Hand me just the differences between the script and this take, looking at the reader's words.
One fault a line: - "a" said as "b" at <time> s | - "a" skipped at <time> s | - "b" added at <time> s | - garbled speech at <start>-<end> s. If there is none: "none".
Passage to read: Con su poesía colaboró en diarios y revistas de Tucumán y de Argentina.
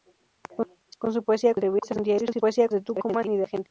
- "colaboró" said as "revistas" at 1.5 s
- "revistas" said as "poesía" at 2.4 s